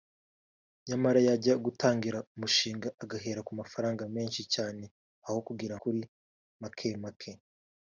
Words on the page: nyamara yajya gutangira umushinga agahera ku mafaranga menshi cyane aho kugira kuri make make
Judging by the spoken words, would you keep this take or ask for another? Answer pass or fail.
pass